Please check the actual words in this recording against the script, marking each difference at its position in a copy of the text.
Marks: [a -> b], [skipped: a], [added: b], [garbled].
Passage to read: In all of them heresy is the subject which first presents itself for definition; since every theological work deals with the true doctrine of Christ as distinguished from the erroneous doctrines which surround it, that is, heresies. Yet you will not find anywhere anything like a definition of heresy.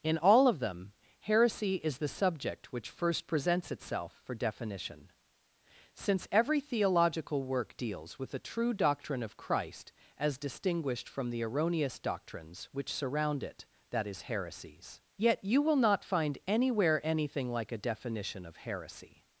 In all of them heresy is the subject which first presents itself for definition; since every theological work deals with the true doctrine of Christ as distinguished from the erroneous doctrines which surround it, that is, heresies. Yet you will not find anywhere anything like a definition of heresy.